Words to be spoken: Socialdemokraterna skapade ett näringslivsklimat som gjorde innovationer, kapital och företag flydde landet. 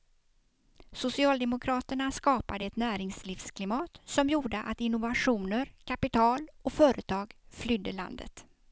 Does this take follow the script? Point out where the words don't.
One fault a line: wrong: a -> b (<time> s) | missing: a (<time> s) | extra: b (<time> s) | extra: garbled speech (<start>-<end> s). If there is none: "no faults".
extra: att (4.6 s)